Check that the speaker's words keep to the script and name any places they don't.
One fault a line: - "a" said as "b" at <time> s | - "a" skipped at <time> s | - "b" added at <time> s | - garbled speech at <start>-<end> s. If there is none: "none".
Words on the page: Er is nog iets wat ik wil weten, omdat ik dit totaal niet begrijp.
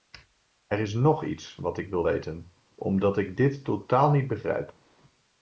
none